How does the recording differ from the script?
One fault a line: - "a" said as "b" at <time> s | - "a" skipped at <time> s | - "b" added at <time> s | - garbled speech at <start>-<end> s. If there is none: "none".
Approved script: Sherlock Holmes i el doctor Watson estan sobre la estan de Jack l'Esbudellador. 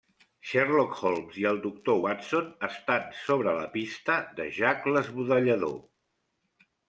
- "estan" said as "pista" at 3.7 s